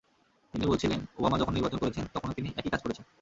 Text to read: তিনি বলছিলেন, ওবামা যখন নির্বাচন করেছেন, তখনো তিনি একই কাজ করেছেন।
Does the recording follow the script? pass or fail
pass